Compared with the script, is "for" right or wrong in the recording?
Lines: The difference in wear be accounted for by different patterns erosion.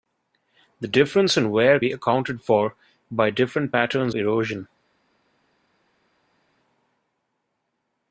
right